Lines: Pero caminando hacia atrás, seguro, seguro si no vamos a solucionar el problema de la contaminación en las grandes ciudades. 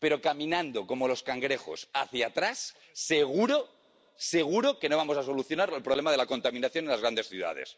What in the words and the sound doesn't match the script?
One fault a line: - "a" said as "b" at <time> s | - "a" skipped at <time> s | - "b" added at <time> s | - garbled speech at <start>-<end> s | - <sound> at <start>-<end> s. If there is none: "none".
- "como los cangrejos" added at 0.9 s
- "si" said as "que" at 4.8 s